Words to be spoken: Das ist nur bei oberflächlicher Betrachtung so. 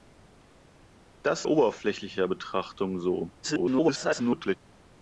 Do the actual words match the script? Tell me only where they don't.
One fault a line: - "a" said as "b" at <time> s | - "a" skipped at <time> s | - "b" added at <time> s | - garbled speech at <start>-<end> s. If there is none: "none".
- "ist nur bei" skipped at 1.4 s
- garbled speech at 3.4-4.6 s